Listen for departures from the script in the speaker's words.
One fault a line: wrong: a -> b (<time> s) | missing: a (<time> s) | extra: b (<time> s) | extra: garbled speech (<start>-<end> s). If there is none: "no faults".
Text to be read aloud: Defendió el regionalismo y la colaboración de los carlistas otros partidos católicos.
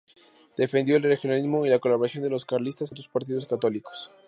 no faults